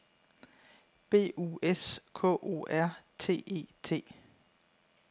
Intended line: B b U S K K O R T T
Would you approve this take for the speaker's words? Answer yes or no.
no